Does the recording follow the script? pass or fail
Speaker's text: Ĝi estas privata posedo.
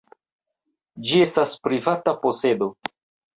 pass